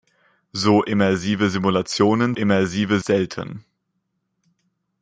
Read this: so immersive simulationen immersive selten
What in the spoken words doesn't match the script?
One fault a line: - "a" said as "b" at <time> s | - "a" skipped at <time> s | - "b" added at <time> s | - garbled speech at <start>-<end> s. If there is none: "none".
none